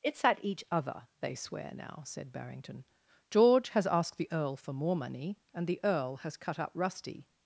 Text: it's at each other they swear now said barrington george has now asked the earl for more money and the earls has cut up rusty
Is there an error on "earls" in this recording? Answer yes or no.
yes